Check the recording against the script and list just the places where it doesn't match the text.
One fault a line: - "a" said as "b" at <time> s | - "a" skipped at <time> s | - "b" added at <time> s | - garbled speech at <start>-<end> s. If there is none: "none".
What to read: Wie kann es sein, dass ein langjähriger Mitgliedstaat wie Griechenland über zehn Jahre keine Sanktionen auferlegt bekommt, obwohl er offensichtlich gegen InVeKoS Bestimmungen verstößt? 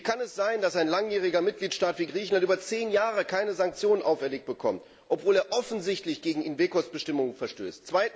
none